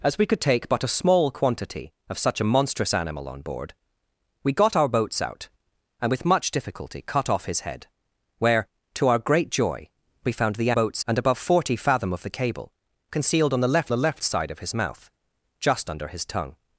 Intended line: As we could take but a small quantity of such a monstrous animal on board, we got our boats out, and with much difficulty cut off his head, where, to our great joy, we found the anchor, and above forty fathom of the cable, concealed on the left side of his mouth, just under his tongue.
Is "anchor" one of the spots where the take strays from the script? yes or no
yes